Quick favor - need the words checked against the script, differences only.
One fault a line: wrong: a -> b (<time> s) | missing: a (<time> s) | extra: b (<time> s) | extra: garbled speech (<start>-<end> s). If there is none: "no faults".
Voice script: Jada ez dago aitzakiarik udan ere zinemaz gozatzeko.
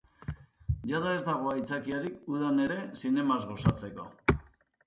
no faults